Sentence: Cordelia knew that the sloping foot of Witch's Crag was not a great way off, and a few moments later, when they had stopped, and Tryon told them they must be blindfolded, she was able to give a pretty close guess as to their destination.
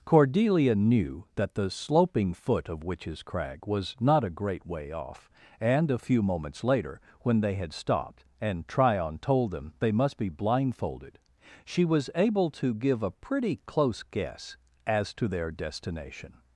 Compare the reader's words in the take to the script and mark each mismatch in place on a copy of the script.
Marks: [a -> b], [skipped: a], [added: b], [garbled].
Cordelia knew that the sloping foot of Witch's Crag was not a great way off, and a few moments later, when they had stopped, and Tryon told them they must be blindfolded, she was able to give a pretty close guess as to their destination.